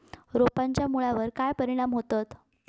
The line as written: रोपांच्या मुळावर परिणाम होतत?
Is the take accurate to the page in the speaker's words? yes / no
no